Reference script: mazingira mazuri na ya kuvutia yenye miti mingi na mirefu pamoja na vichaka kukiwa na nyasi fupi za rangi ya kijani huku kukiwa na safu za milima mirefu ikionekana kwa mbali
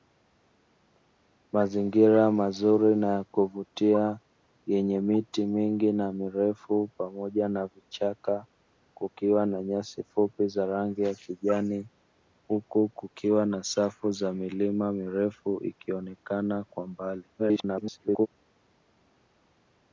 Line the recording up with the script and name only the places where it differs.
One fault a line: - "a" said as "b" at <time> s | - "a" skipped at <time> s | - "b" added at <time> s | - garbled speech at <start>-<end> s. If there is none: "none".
- garbled speech at 17.4-18.3 s